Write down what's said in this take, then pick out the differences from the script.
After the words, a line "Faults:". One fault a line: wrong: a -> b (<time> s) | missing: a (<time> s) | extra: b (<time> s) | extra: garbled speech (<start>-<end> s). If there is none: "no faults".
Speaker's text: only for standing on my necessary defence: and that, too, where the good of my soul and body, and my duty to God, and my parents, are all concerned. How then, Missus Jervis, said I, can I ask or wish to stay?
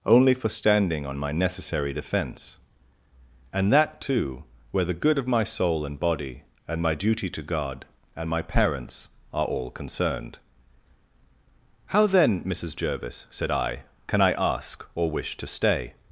only for standing on my necessary defence: and that, too, where the good of my soul and body, and my duty to God, and my parents, are all concerned. How then, Missus Jervis, said I, can I ask or wish to stay?
Faults:
no faults